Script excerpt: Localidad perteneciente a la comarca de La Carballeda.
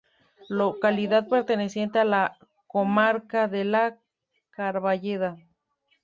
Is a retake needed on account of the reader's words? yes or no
no